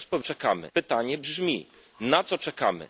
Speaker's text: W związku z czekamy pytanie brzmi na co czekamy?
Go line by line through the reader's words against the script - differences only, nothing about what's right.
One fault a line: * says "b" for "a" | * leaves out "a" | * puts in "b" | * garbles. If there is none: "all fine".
all fine